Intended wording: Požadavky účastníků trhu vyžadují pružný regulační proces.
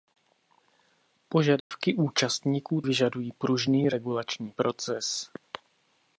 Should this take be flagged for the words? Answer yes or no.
yes